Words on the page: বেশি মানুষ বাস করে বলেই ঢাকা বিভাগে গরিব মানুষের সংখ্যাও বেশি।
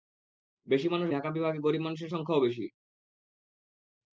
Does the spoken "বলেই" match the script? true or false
false